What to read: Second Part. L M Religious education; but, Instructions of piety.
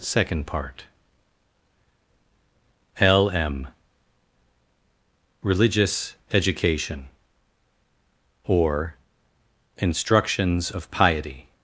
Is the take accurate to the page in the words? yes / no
no